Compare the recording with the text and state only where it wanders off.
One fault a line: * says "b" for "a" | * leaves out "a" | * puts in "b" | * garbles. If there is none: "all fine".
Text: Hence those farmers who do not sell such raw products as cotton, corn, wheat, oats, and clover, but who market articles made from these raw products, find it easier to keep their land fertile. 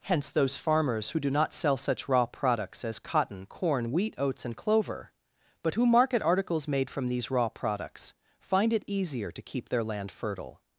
all fine